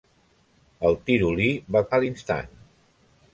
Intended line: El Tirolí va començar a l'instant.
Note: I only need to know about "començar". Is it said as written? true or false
false